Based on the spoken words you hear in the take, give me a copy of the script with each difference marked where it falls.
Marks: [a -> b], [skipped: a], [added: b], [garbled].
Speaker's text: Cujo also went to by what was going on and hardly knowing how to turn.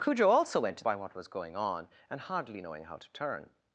Cujo also went to by what was going on and hardly knowing how to turn.